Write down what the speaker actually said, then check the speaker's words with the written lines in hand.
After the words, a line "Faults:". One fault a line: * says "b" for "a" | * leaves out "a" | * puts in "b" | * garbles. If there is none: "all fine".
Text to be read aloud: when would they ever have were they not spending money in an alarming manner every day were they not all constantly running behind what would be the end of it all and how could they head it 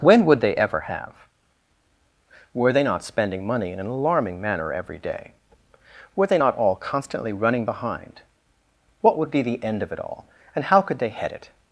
when would they ever have were they not spending money in an alarming manner every day were they not all constantly running behind what would be the end of it all and how could they head it
Faults:
all fine